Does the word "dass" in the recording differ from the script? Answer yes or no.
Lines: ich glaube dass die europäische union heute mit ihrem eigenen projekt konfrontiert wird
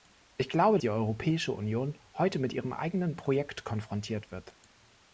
yes